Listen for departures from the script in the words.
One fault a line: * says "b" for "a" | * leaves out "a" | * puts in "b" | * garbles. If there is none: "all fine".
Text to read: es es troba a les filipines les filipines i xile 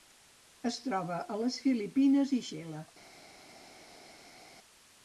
* leaves out "es"
* leaves out "les filipines"